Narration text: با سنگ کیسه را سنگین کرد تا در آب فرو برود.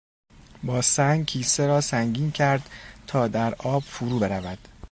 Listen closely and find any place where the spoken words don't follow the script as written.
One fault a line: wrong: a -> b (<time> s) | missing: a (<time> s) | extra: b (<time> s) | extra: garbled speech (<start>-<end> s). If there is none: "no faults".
no faults